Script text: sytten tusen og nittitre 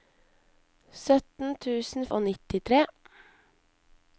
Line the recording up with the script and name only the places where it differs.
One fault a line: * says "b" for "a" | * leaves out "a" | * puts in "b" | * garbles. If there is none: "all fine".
all fine